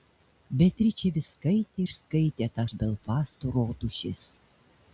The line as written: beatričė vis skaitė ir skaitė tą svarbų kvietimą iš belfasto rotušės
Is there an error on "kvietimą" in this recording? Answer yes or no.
yes